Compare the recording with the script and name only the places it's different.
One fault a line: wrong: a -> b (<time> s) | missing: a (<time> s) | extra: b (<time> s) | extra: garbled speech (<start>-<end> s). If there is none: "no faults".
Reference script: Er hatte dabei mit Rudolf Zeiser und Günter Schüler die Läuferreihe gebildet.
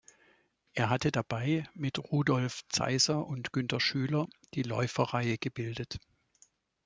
no faults